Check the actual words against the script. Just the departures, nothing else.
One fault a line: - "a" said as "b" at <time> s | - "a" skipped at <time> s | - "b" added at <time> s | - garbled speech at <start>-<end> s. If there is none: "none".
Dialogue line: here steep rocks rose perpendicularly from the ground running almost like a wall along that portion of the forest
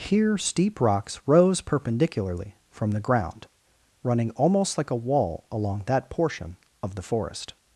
none